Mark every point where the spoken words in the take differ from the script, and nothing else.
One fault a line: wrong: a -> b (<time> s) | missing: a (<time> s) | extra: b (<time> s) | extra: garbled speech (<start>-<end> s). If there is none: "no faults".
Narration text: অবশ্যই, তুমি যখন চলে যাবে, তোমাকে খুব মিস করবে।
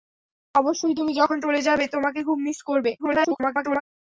extra: garbled speech (3.0-3.8 s)